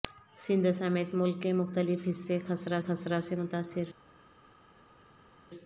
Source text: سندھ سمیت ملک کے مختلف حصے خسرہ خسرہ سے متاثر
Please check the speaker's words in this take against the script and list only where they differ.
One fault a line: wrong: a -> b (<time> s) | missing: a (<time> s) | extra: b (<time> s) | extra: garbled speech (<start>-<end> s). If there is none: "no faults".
no faults